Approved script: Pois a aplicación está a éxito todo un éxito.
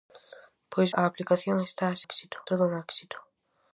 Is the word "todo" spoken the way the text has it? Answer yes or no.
yes